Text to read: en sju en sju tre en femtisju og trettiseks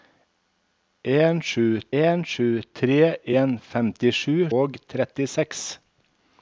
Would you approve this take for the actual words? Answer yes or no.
yes